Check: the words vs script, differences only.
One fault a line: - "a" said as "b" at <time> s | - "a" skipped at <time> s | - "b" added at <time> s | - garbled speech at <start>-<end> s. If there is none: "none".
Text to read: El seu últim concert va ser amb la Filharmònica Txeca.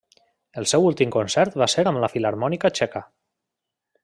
none